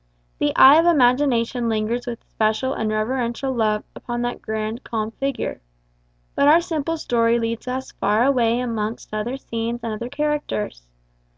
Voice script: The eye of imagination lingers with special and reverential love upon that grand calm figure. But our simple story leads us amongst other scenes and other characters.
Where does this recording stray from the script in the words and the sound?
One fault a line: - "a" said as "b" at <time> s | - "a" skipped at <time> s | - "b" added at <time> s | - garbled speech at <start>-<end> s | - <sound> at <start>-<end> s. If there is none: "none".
- "far away" added at 7.9 s